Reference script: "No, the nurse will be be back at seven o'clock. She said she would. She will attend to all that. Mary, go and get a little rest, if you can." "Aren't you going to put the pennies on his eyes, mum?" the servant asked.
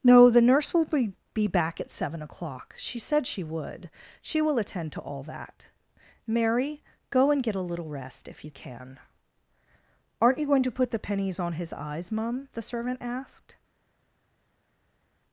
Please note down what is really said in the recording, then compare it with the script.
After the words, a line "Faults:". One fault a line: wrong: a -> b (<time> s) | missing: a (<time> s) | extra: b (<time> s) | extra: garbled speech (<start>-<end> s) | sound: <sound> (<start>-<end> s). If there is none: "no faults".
"No, the nurse will be be back at seven o'clock. She said she would. She will attend to all that. Mary, go and get a little rest, if you can." "Aren't you going to put the pennies on his eyes, mum?" the servant asked.
Faults:
no faults